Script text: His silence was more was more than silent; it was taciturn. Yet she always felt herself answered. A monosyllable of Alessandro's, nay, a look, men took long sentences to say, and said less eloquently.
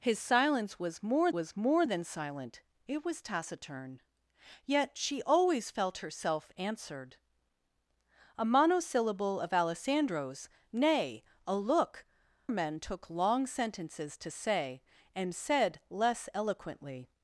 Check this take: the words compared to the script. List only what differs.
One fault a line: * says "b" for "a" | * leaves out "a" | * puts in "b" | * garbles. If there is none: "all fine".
all fine